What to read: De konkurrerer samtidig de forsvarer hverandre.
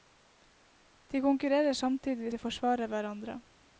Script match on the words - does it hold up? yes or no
yes